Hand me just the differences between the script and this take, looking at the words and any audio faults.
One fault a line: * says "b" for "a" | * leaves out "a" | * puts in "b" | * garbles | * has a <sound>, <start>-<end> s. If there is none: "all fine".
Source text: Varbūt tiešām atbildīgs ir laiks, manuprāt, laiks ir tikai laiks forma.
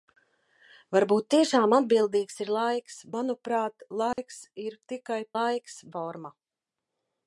* has a dropout, 4.1-4.2 s